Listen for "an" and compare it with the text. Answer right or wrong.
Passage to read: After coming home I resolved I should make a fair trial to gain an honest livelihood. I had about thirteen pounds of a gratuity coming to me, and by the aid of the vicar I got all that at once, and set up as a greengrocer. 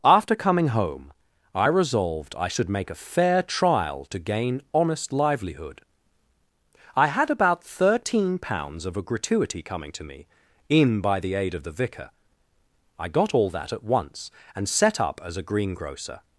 wrong